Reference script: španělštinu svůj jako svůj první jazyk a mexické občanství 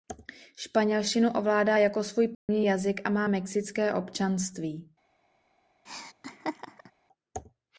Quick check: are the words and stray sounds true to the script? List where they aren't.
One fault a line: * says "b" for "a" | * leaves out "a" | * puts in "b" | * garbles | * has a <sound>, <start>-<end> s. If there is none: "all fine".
* says "ovládá" for "svůj"
* has a dropout, 2.3-2.5 s
* puts in "má"
* has a laugh, 5.9-6.9 s